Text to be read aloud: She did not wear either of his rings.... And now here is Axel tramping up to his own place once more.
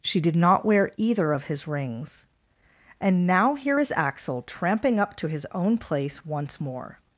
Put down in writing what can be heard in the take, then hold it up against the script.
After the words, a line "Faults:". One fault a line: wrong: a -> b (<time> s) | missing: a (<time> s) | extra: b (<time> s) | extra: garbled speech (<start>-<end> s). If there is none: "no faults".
She did not wear either of his rings.... And now here is Axel tramping up to his own place once more.
Faults:
no faults